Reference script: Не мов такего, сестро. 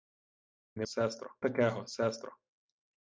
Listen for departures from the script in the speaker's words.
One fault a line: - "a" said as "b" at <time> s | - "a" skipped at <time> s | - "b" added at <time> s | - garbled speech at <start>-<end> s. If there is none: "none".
- "мов" said as "сестро" at 0.9 s